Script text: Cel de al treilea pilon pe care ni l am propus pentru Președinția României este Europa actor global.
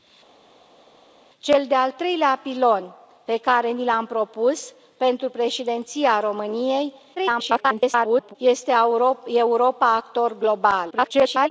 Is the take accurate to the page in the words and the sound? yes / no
no